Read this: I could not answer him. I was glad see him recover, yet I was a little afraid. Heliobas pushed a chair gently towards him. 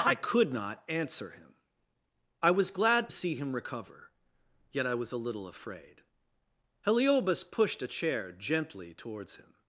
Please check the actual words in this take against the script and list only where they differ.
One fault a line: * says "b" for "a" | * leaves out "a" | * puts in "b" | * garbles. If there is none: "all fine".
all fine